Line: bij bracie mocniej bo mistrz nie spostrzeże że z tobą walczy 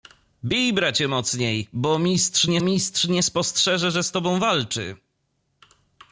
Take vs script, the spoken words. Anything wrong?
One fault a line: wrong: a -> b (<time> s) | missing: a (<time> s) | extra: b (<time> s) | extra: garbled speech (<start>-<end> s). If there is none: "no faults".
extra: mistrz nie (2.6 s)